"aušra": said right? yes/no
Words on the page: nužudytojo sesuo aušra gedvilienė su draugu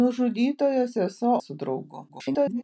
no